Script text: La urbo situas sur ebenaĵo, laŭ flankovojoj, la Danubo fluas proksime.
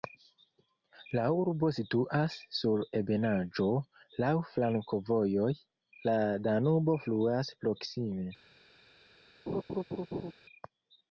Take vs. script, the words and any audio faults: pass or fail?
fail